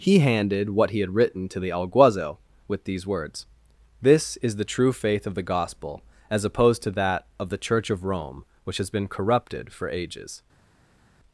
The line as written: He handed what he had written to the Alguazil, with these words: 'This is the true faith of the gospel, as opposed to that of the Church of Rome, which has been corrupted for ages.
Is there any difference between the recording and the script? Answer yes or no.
no